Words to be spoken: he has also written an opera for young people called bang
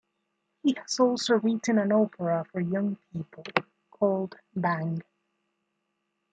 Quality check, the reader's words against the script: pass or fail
pass